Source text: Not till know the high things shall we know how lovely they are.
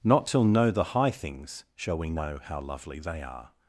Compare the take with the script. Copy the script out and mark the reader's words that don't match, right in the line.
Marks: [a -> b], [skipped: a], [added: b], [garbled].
Not till know the high things shall we know how lovely they are.